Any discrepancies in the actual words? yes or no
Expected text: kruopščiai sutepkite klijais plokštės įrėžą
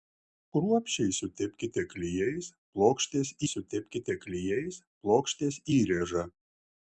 yes